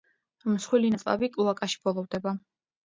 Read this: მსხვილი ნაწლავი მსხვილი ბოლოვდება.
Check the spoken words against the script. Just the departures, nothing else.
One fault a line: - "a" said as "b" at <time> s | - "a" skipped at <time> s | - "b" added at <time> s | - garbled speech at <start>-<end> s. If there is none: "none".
- "მსხვილი" said as "კლოაკაში" at 1.4 s